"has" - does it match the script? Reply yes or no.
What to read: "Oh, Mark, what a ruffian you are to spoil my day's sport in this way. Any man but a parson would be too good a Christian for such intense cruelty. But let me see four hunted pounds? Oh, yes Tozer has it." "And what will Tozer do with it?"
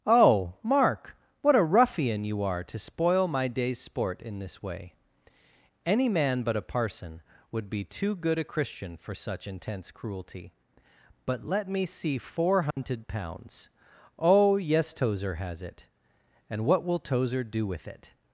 yes